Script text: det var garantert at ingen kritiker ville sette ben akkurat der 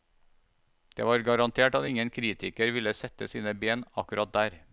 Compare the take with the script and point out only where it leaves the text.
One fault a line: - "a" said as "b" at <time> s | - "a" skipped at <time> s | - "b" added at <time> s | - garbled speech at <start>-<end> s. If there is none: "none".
- "sine" added at 3.3 s